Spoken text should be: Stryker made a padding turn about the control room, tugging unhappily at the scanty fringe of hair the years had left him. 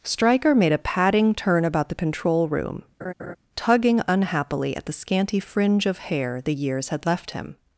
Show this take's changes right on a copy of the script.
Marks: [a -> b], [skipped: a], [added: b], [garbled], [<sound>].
Stryker made a padding turn about the control room, [laugh] tugging unhappily at the scanty fringe of hair the years had left him.